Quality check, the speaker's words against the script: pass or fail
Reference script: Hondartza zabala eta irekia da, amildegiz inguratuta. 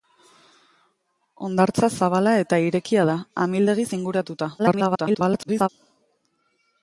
fail